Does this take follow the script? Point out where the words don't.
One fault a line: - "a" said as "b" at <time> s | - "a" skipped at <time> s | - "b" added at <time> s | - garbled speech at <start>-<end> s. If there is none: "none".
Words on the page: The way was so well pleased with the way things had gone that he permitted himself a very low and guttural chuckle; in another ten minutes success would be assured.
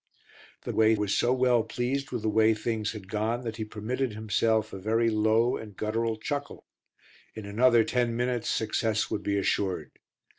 none